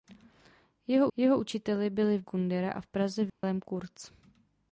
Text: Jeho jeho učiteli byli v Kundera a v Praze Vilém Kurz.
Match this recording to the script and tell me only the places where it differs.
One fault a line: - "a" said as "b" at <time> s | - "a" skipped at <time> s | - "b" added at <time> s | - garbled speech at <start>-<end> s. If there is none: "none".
none